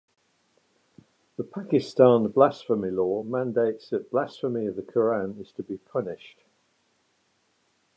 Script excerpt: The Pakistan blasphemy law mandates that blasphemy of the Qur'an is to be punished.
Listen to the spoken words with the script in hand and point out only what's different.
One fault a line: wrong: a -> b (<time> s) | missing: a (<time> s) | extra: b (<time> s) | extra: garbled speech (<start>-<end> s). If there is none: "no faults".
no faults